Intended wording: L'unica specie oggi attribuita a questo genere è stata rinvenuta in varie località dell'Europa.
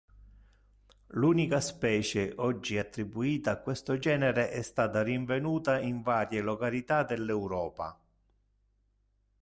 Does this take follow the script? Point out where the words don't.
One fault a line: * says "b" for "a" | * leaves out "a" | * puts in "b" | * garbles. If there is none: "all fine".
all fine